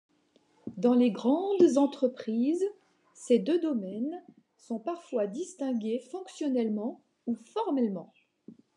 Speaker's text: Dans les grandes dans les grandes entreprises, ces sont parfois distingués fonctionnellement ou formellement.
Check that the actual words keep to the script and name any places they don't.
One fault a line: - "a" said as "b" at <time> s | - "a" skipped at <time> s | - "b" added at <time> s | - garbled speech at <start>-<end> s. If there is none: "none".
- "dans les grandes entreprises ces" said as "entreprises ces deux domaines" at 1.8 s